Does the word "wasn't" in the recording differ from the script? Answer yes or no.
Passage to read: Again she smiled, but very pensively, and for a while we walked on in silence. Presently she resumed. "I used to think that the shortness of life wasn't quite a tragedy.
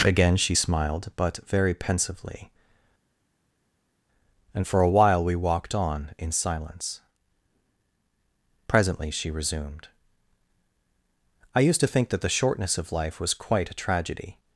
yes